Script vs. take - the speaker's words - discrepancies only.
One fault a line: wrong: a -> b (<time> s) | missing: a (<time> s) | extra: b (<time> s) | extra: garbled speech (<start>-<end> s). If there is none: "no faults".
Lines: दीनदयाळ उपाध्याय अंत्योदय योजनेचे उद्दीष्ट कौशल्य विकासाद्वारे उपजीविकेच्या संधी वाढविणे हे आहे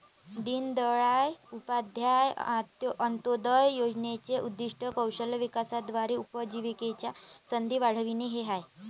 no faults